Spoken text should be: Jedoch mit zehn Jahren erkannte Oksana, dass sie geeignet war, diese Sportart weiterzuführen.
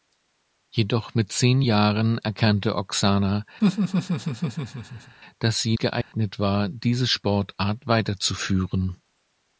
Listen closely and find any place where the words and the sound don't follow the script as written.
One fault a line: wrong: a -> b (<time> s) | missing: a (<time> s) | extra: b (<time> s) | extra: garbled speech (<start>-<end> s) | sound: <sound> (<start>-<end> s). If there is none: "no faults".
sound: laugh (3.6-5.2 s)
sound: dropout (6.0-6.1 s)